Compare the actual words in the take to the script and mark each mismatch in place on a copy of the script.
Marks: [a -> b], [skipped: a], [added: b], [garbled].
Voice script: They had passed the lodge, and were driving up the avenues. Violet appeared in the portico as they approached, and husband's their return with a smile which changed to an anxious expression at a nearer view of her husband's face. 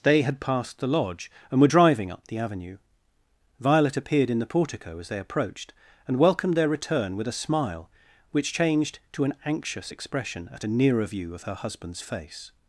They had passed the lodge, and were driving up the [avenues. -> avenue] Violet appeared in the portico as they approached, and [husband's -> welcomed] their return with a smile which changed to an anxious expression at a nearer view of her husband's face.